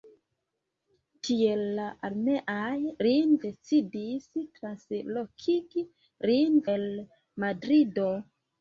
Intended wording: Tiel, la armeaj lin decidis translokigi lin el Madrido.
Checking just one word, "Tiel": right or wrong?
right